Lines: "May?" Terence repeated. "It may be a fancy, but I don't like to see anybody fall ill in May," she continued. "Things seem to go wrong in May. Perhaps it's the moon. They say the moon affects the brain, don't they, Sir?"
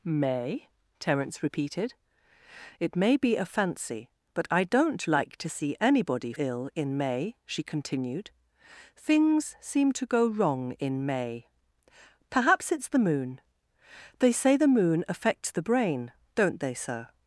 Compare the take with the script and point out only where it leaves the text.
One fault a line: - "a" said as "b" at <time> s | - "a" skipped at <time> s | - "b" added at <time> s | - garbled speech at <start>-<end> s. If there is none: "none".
- "fall" skipped at 6.3 s